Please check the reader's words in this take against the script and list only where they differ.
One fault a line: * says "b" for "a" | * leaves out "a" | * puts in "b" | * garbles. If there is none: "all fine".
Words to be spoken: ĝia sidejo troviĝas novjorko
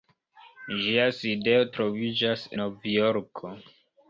all fine